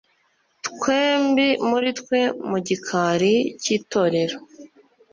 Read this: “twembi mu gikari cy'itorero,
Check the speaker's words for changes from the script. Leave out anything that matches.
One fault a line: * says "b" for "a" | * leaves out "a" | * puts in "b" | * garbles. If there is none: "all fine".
* puts in "muri twe"